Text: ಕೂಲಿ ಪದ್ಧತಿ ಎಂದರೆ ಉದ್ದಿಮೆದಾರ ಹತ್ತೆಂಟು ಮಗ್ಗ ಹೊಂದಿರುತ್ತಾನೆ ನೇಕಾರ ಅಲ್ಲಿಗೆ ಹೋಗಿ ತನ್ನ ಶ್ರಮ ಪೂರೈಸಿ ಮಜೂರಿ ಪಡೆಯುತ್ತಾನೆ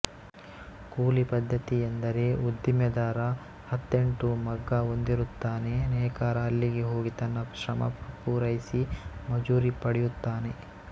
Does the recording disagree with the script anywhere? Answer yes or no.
no